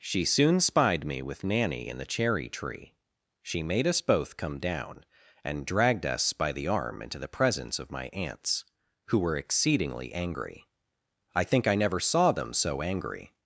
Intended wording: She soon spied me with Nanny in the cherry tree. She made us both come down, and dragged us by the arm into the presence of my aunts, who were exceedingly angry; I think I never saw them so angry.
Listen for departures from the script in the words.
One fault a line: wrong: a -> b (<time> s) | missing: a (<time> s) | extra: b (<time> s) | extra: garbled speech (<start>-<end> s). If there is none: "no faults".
no faults